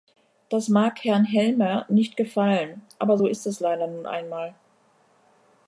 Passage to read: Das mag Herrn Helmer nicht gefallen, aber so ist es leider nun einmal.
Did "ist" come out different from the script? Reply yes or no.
no